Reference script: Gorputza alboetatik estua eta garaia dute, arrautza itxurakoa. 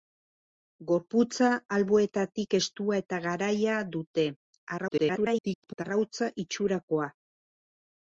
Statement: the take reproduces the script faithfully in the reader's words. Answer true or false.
false